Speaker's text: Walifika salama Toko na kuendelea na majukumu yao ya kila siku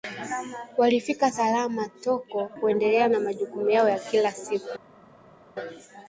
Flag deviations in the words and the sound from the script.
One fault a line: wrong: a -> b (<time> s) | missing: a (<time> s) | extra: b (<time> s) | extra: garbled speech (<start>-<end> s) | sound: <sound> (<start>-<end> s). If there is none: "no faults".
missing: na (2.5 s)